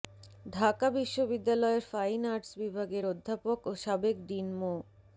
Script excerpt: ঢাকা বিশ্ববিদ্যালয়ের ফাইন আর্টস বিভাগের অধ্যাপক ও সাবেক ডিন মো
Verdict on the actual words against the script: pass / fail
pass